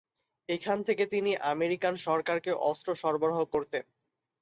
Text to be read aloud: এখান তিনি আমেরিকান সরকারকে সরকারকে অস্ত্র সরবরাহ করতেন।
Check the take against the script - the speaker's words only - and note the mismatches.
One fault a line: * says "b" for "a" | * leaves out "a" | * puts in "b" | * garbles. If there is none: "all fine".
* puts in "থেকে"
* leaves out "সরকারকে"